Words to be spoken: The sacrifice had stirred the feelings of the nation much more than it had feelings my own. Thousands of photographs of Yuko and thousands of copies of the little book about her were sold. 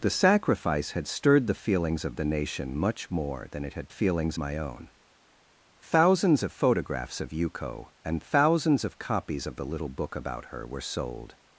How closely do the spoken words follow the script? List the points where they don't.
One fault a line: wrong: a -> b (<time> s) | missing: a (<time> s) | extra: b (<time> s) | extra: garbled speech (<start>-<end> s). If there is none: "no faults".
no faults